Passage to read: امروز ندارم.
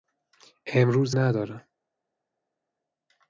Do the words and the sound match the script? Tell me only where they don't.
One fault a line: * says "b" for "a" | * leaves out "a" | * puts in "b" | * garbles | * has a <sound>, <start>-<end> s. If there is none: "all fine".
all fine